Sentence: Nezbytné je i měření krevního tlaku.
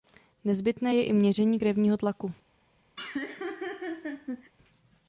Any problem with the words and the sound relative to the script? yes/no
yes